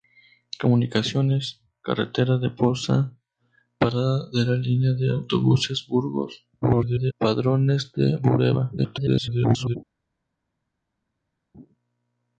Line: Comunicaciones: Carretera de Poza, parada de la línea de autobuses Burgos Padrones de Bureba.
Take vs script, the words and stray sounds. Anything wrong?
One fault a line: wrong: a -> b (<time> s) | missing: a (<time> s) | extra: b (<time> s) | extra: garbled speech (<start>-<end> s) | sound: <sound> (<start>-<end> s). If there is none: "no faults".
extra: garbled speech (6.6-7.1 s)
extra: garbled speech (8.8-9.8 s)